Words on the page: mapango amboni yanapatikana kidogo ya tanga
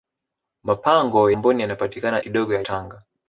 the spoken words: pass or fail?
pass